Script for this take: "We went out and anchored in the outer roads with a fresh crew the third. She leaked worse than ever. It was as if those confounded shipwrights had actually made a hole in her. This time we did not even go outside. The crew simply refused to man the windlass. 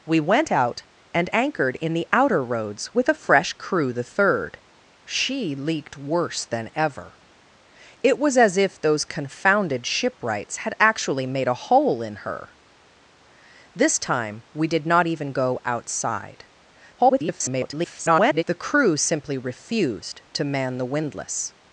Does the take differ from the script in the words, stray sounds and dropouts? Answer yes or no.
yes